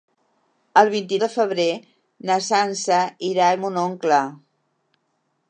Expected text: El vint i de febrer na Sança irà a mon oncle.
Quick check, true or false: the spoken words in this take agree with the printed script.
true